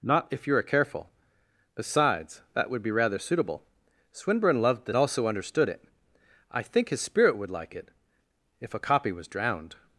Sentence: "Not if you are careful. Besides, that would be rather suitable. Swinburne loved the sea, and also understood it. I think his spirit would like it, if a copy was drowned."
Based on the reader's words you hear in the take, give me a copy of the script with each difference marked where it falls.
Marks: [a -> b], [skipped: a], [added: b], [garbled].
"Not if you are careful. Besides, that would be rather suitable. Swinburne loved the [skipped: sea, and] also understood it. I think his spirit would like it, if a copy was drowned."